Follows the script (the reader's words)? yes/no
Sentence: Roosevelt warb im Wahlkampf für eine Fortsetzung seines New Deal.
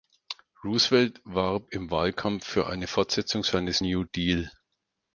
yes